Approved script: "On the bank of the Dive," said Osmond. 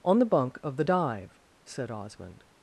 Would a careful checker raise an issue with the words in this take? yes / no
yes